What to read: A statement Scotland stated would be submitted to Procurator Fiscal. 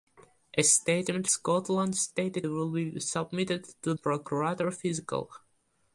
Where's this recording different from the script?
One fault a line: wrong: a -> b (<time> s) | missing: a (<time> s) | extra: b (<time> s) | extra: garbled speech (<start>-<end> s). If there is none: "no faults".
no faults